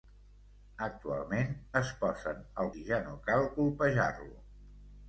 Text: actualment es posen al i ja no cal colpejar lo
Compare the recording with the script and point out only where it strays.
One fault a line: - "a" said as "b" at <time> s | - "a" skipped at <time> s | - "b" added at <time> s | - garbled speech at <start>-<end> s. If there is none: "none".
none